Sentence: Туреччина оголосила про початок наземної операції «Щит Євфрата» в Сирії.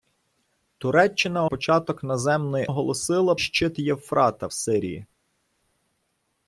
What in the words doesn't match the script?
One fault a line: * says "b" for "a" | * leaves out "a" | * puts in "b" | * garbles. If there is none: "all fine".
* leaves out "оголосила про"
* says "оголосила" for "операції"
* leaves out "в"